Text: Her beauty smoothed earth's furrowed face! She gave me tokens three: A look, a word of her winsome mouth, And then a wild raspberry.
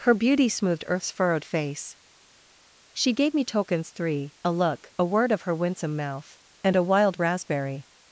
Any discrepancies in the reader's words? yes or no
yes